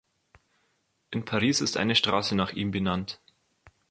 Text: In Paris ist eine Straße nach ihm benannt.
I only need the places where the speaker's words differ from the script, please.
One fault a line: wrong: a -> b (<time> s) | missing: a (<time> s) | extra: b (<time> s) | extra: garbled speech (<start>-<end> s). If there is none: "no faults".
no faults